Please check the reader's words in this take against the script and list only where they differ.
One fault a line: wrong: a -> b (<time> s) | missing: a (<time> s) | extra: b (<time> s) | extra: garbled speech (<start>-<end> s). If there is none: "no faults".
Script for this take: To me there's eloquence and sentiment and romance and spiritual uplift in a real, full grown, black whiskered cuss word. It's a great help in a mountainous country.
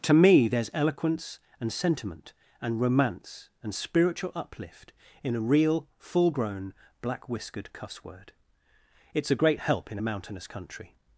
no faults